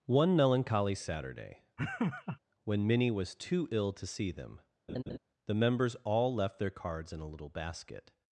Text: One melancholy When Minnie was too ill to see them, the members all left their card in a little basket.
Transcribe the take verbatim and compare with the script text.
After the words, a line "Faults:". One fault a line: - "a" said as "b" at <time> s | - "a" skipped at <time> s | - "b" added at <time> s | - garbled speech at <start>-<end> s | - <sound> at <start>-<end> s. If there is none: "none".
One melancholy Saturday, when Minnie was too ill to see them, the members all left their cards in a little basket.
Faults:
- "Saturday" added at 0.9 s
- laugh at 1.8-2.4 s
- laugh at 4.9-5.2 s
- "card" said as "cards" at 6.7 s